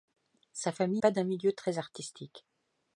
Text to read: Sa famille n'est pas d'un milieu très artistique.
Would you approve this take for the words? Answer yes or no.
no